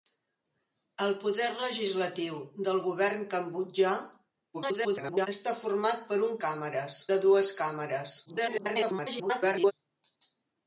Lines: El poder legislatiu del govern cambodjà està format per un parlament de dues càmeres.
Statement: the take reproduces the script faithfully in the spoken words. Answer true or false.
false